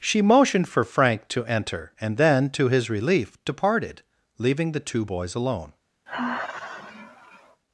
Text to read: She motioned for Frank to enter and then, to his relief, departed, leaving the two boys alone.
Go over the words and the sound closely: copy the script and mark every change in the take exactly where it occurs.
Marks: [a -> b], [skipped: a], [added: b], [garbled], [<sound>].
She motioned for Frank to enter and then, to his relief, departed, leaving the two boys alone. [sigh]